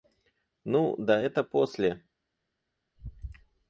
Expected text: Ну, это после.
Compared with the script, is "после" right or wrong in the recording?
right